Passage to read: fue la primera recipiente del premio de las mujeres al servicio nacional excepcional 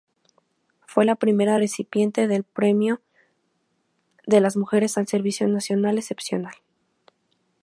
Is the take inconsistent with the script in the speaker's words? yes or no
no